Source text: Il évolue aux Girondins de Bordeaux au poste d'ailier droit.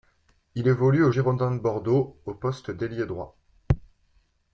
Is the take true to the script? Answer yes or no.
yes